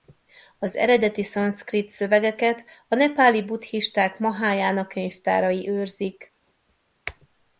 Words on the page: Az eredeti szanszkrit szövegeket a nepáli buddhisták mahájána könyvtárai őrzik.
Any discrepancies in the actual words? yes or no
no